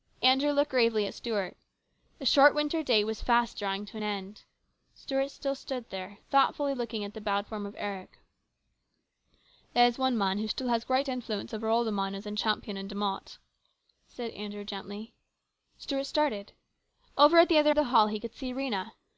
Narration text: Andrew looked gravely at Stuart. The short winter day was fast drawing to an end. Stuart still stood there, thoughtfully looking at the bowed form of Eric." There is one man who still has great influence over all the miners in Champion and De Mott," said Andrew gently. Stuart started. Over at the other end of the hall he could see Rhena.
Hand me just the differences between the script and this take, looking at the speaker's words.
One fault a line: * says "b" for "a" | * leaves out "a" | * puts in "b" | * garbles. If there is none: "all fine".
* leaves out "end"